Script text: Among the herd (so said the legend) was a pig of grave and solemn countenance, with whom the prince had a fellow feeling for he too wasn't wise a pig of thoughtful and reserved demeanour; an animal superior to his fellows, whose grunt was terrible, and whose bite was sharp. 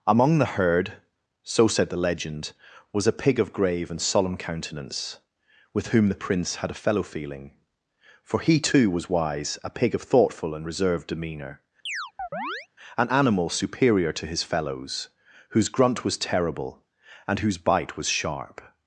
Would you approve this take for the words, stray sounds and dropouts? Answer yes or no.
no